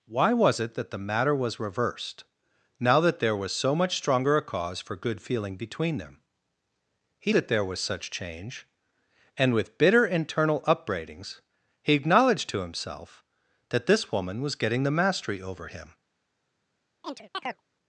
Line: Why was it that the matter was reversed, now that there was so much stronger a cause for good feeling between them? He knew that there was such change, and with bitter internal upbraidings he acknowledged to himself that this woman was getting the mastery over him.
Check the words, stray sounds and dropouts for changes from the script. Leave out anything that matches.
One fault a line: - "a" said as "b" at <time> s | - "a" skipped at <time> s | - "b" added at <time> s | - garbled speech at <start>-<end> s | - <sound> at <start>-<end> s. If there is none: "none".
- "knew" skipped at 7.3 s
- chirp at 17.0-17.6 s